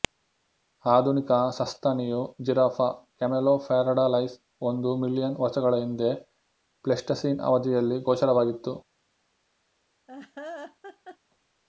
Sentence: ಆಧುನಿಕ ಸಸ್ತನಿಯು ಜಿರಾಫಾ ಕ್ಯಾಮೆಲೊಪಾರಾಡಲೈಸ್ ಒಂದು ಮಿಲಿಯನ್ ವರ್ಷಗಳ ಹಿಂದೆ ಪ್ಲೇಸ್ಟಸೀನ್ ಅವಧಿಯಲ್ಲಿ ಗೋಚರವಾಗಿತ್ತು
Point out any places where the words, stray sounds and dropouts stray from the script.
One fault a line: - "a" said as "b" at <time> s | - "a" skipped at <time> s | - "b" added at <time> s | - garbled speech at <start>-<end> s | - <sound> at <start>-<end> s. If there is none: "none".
- laugh at 10.1-11.2 s